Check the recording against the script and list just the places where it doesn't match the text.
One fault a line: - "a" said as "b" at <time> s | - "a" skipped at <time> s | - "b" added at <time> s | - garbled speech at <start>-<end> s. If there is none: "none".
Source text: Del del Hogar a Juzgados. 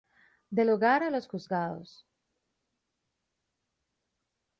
- "del" skipped at 0.7 s
- "los" added at 1.1 s